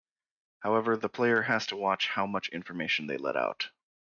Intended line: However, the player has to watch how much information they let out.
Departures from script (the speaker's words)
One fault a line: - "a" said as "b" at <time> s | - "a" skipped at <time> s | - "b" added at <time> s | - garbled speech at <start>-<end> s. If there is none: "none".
none